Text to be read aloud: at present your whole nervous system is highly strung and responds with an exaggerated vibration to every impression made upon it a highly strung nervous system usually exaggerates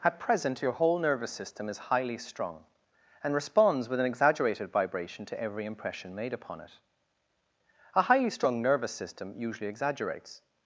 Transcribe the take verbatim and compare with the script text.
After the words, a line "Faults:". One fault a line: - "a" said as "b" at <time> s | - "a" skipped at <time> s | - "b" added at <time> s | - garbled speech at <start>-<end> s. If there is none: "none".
at present your whole nervous system is highly strung and responds with an exaggerated vibration to every impression made upon it a highly strung nervous system usually exaggerates
Faults:
none